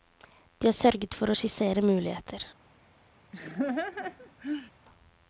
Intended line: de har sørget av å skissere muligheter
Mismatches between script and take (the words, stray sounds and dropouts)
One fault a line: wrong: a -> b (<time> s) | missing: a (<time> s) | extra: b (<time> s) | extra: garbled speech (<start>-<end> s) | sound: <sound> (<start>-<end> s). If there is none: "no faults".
wrong: av -> for (1.2 s)
sound: laugh (3.3-4.7 s)